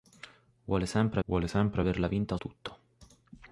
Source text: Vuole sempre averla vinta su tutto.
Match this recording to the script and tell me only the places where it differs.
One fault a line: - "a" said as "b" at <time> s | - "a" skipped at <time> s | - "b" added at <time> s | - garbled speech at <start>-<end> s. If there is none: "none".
- "vuole sempre" added at 1.3 s
- "su" skipped at 2.4 s